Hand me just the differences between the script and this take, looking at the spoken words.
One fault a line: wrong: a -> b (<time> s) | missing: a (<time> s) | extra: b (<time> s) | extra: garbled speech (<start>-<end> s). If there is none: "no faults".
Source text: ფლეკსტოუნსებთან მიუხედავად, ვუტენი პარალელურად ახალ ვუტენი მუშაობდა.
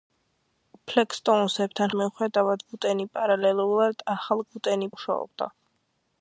no faults